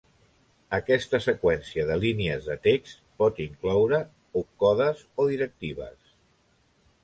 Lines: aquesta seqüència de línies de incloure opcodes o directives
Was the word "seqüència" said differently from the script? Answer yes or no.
no